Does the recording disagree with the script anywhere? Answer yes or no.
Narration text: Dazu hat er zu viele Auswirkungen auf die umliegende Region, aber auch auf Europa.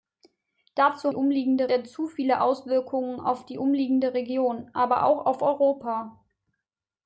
yes